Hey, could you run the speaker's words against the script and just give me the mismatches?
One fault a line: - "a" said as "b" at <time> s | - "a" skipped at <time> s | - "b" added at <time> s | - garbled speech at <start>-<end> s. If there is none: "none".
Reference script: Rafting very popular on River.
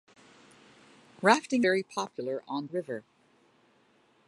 none